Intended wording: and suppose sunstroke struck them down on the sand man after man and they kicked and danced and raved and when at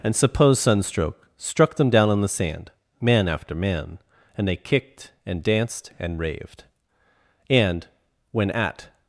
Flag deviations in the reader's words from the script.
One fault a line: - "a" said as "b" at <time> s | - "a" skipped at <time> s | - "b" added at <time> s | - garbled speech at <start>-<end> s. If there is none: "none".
none